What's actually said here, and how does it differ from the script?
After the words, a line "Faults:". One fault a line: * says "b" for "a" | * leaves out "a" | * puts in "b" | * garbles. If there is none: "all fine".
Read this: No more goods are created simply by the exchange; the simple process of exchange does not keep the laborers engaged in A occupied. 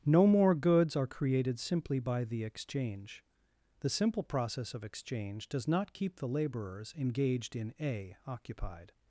No more goods are created simply by the exchange; the simple process of exchange does not keep the laborers engaged in A occupied.
Faults:
all fine